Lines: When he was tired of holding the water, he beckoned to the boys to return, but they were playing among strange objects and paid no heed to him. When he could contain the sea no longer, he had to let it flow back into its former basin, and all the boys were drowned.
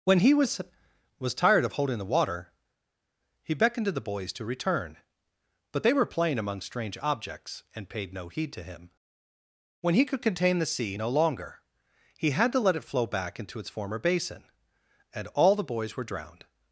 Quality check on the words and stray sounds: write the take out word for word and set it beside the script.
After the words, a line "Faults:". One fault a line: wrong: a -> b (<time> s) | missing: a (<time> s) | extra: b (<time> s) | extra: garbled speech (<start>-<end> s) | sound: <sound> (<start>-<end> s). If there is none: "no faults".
When he was was tired of holding the water, he beckoned to the boys to return, but they were playing among strange objects and paid no heed to him. When he could contain the sea no longer, he had to let it flow back into its former basin, and all the boys were drowned.
Faults:
extra: was (1.2 s)